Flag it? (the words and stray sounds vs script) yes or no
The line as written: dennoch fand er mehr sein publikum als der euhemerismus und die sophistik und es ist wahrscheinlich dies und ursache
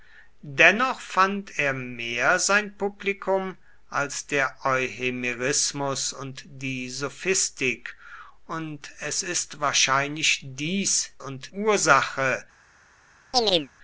yes